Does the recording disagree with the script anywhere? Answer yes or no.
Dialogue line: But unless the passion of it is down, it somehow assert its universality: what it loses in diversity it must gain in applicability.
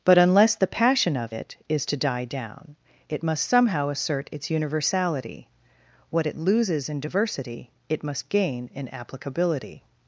yes